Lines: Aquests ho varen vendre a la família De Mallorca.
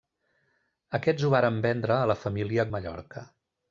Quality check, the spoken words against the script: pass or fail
pass